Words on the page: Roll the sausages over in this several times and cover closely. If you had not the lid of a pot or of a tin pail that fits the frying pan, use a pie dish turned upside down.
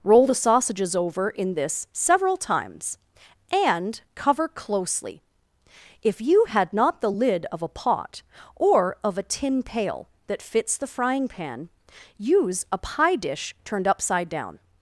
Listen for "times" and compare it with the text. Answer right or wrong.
right